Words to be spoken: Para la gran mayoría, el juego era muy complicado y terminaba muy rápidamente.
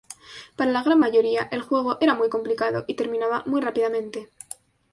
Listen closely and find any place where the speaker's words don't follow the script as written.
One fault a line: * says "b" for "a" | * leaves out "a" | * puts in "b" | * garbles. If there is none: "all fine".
all fine